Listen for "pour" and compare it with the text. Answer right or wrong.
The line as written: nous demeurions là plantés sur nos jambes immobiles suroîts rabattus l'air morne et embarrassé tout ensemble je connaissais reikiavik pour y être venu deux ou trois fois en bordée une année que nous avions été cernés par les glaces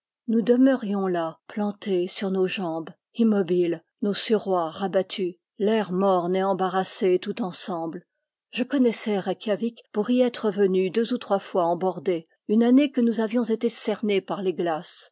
right